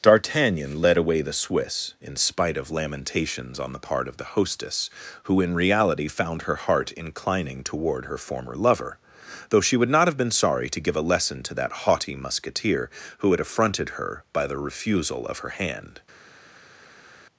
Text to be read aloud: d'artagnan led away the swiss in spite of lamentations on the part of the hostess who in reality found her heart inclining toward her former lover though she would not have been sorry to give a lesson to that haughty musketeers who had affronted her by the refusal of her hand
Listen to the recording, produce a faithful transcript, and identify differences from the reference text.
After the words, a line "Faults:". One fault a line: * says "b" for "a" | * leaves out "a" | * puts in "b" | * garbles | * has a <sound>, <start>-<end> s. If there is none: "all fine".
d'artagnan led away the swiss in spite of lamentations on the part of the hostess who in reality found her heart inclining toward her former lover though she would not have been sorry to give a lesson to that haughty musketeer who had affronted her by the refusal of her hand
Faults:
* says "musketeer" for "musketeers"